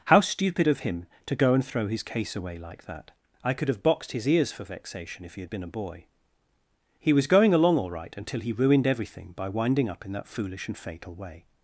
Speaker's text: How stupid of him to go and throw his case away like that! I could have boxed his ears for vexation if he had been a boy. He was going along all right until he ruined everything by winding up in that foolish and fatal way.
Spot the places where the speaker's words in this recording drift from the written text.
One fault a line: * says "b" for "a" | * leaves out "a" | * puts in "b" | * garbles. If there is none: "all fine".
all fine